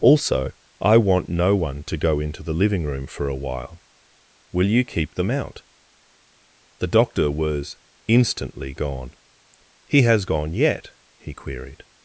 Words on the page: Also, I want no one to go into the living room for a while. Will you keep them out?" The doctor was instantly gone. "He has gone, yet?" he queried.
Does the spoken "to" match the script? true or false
true